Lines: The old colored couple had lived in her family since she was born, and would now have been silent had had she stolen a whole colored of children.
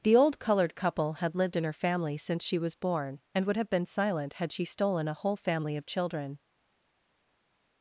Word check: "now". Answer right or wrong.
wrong